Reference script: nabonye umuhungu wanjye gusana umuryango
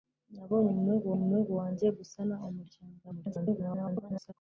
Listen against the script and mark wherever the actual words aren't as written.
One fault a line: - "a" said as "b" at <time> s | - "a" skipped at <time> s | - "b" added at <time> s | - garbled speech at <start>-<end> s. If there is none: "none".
- "umuhungu" added at 1.2 s
- garbled speech at 3.0-4.3 s